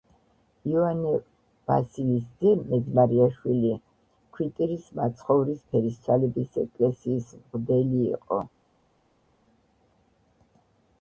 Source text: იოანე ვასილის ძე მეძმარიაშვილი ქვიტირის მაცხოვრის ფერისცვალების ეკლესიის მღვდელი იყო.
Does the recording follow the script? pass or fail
pass